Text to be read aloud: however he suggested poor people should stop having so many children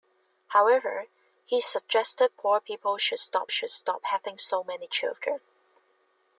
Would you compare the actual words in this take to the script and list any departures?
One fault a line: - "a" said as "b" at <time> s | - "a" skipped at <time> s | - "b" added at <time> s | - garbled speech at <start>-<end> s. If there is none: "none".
- "should stop" added at 3.5 s